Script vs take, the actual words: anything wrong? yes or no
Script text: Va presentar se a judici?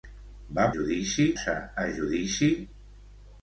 yes